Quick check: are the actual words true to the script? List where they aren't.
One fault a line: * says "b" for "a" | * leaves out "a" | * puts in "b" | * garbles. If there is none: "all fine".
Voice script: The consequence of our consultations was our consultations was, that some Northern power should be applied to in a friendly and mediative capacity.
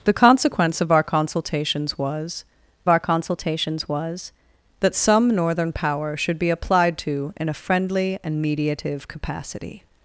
all fine